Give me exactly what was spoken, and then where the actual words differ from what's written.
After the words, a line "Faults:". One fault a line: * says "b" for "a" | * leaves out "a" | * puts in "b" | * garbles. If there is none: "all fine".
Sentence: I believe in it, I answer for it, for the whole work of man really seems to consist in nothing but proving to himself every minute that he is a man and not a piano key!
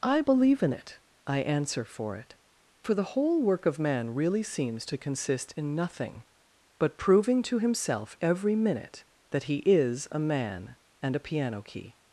I believe in it, I answer for it, for the whole work of man really seems to consist in nothing but proving to himself every minute that he is a man and a piano key!
Faults:
* leaves out "not"